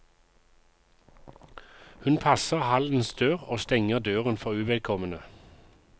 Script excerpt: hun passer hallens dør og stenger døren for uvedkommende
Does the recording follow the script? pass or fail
pass